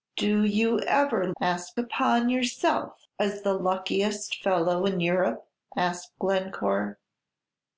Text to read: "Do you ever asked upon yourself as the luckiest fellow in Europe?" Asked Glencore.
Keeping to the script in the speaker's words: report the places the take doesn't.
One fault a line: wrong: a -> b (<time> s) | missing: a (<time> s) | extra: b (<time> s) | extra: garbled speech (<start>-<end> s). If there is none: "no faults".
no faults